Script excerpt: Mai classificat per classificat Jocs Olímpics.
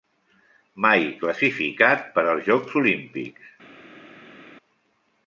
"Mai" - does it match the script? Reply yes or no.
yes